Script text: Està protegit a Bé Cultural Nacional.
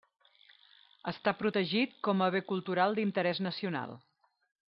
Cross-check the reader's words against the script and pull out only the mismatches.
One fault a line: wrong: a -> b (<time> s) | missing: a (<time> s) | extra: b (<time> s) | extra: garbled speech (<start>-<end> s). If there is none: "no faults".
extra: com (2.1 s)
extra: d'Interès (3.0 s)